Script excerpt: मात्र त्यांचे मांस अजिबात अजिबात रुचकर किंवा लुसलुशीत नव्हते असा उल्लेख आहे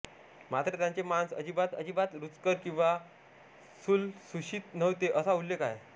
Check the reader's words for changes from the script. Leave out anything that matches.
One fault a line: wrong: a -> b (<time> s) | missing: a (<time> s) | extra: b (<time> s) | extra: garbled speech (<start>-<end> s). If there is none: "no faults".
no faults